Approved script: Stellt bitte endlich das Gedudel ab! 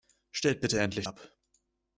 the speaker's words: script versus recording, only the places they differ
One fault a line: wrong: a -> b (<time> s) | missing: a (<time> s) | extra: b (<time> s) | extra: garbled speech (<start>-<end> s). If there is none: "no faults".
missing: das Gedudel (1.1 s)